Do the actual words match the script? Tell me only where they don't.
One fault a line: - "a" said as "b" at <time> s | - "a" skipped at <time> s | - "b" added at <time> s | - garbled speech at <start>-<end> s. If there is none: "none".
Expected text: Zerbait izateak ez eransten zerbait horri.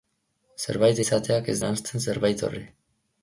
none